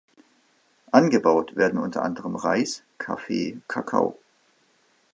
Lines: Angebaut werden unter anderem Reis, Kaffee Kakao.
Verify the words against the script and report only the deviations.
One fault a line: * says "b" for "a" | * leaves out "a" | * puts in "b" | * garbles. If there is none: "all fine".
all fine